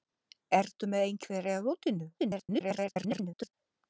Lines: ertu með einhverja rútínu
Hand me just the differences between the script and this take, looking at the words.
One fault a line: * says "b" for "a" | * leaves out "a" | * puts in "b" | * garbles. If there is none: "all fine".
* garbles